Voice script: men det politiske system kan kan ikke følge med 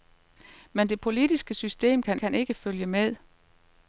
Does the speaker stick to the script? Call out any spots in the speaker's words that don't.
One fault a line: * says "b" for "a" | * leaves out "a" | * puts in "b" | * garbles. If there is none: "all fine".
all fine